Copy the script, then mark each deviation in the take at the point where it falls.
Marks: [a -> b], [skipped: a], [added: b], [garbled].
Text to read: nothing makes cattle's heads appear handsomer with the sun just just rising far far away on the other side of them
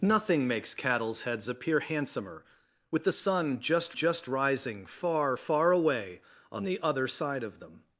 nothing makes cattle's heads appear handsomer with the sun just just rising far far away on the other side of them